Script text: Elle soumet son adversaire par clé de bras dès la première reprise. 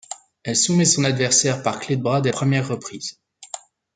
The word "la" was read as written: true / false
false